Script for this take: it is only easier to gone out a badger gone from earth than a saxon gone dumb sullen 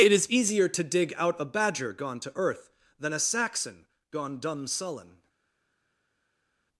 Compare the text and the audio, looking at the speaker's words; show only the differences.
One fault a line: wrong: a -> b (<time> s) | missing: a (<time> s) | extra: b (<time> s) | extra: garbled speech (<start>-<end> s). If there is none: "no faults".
missing: only (0.3 s)
wrong: gone -> dig (0.8 s)
wrong: from -> to (2.2 s)